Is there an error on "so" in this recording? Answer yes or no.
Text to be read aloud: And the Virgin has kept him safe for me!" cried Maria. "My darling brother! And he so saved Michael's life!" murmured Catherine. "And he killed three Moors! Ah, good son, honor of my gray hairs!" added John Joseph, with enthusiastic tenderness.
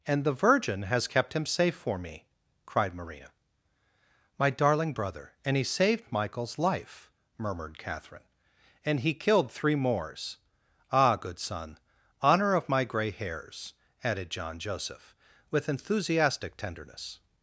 yes